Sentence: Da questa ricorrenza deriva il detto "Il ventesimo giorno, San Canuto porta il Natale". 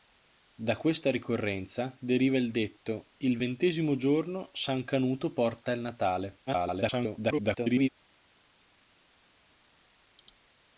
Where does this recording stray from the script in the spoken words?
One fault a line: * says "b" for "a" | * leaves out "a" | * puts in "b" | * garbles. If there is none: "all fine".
* garbles